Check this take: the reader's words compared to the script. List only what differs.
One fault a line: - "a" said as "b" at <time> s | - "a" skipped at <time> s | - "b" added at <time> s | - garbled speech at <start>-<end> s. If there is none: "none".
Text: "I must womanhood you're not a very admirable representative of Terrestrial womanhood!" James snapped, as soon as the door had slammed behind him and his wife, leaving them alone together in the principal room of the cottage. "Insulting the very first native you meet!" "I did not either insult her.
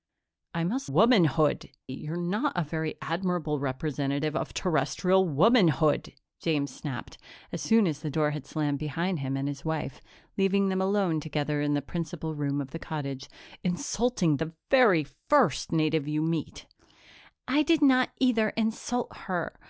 none